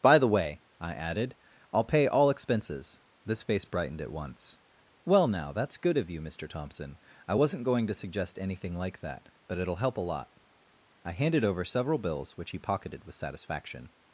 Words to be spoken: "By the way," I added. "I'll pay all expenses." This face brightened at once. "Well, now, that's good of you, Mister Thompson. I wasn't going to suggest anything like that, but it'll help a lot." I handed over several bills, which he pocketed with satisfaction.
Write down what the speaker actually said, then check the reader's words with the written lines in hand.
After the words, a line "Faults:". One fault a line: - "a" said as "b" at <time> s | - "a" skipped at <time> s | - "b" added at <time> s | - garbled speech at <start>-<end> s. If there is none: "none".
"By the way," I added. "I'll pay all expenses." This face brightened at once. "Well, now, that's good of you, Mister Thompson. I wasn't going to suggest anything like that, but it'll help a lot." I handed over several bills, which he pocketed with satisfaction.
Faults:
none